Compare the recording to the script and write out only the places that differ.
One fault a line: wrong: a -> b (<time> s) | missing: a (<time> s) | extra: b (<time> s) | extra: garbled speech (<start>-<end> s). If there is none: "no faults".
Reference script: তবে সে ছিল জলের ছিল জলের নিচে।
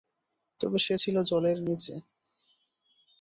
missing: ছিল জলের (1.6 s)